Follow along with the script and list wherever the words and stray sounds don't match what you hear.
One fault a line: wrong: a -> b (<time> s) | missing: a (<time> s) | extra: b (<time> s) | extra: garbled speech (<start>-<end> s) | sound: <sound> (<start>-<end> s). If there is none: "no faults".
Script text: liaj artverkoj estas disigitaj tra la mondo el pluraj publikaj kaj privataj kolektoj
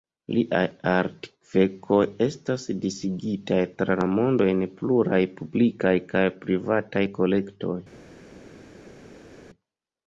wrong: el -> en (4.5 s)